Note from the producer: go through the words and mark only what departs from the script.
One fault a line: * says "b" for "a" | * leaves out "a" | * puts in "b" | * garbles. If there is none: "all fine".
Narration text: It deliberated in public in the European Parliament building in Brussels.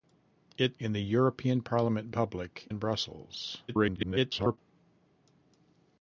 * leaves out "deliberated"
* leaves out "public in"
* says "public" for "building"
* garbles